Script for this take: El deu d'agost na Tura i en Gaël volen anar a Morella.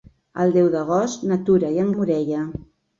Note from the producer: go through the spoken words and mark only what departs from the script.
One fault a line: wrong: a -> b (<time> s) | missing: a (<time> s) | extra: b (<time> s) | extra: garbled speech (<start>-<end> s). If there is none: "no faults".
missing: Gaël volen anar (1.9 s)